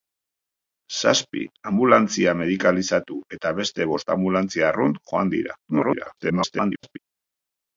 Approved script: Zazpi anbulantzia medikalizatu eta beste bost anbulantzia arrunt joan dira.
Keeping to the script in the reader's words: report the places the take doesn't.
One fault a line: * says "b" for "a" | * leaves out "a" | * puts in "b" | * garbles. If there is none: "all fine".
* garbles